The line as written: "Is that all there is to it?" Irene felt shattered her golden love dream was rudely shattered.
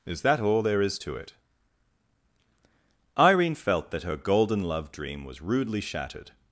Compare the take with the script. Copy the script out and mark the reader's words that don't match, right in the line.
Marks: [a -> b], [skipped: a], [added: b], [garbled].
"Is that all there is to it?" Irene felt [shattered -> that] her golden love dream was rudely shattered.